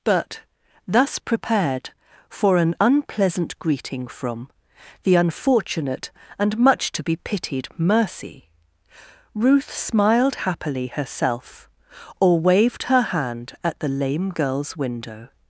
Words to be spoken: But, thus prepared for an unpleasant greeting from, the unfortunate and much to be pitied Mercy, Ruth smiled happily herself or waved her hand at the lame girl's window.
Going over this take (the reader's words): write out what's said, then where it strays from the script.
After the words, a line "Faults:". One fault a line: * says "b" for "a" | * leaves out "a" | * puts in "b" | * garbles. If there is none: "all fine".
But, thus prepared for an unpleasant greeting from, the unfortunate and much to be pitied Mercy, Ruth smiled happily herself or waved her hand at the lame girl's window.
Faults:
all fine